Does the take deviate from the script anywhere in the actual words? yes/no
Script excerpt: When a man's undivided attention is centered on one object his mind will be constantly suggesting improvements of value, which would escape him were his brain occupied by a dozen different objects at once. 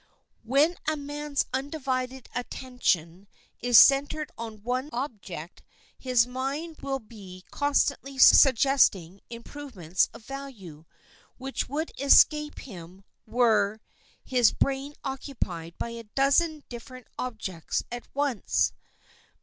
no